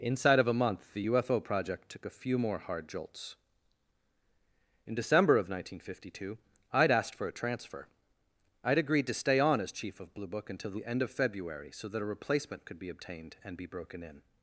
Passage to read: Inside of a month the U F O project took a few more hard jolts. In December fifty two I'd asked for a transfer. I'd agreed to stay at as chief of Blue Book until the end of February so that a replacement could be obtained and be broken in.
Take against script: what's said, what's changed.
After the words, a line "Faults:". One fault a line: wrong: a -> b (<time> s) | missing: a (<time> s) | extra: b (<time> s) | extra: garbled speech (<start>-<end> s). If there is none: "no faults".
Inside of a month the U F O project took a few more hard jolts. In December of nineteen fifty two I'd asked for a transfer. I'd agreed to stay on as chief of Blue Book until the end of February so that a replacement could be obtained and be broken in.
Faults:
extra: of nineteen (5.4 s)
wrong: at -> on (9.4 s)